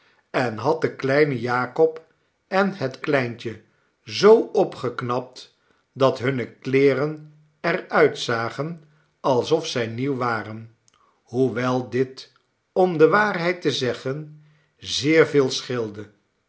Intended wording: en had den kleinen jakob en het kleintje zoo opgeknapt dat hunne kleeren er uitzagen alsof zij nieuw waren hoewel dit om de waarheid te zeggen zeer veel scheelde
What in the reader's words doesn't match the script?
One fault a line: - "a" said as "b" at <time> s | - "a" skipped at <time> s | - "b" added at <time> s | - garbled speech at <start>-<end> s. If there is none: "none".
none